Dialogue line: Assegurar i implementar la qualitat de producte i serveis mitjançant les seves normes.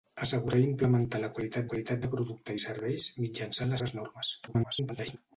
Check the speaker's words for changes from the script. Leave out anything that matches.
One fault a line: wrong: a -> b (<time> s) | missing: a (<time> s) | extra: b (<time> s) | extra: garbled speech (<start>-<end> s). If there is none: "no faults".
extra: qualitat (1.7 s)
missing: les (3.8 s)
extra: garbled speech (4.5-5.2 s)